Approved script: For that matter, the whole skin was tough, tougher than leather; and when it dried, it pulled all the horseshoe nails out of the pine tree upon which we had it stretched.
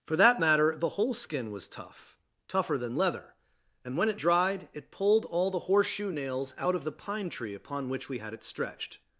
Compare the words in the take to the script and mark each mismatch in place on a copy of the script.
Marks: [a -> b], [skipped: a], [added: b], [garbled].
For that matter, the whole skin was tough, tougher than leather; and when it dried, it pulled all the horseshoe nails out of the pine tree upon which we had it stretched.